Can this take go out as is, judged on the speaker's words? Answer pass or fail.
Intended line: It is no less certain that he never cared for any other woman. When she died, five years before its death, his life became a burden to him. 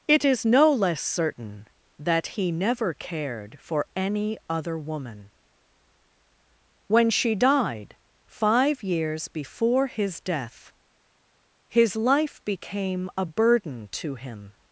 fail